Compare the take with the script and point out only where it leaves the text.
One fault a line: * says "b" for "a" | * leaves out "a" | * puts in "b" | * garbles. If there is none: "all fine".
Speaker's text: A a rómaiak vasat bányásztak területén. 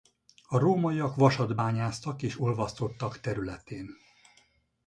* leaves out "a"
* puts in "és olvasztottak"